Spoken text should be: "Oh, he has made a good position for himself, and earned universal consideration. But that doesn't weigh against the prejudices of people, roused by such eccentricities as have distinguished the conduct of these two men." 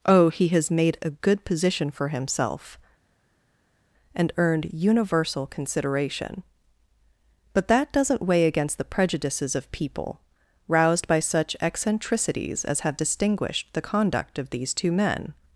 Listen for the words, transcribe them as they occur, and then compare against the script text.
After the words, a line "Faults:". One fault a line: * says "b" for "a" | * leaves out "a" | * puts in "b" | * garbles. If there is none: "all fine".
"Oh, he has made a good position for himself, and earned universal consideration. But that doesn't weigh against the prejudices of people, roused by such eccentricities as have distinguished the conduct of these two men."
Faults:
all fine